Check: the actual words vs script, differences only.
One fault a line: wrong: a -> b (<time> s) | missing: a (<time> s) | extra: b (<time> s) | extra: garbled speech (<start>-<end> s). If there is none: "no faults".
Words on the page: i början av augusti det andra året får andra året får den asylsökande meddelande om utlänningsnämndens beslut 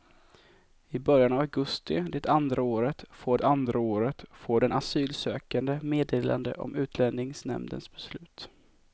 no faults